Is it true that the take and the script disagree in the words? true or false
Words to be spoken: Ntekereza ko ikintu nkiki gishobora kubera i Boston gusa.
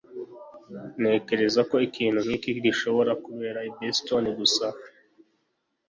false